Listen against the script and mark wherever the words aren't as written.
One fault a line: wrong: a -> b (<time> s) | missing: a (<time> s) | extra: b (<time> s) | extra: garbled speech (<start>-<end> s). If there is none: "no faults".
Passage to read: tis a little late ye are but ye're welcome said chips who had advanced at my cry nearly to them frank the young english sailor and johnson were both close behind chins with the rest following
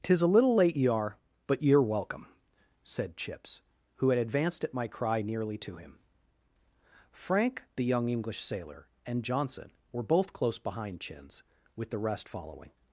wrong: them -> him (5.7 s)